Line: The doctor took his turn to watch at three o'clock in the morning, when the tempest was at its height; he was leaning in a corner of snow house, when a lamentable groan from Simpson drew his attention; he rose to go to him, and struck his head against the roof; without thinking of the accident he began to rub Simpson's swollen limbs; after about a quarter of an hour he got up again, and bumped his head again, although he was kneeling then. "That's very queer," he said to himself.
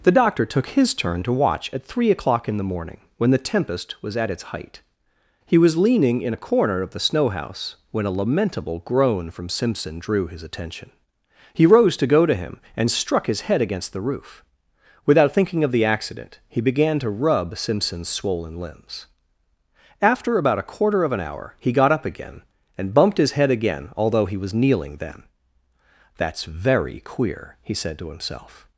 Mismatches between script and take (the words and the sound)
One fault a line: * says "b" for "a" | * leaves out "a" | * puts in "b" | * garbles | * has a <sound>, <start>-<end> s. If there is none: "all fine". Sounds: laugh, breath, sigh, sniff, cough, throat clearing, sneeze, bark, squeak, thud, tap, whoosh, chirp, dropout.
* puts in "the"